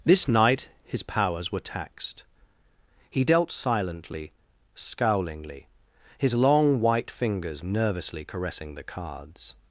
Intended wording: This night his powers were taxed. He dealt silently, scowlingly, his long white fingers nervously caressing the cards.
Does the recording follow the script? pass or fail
pass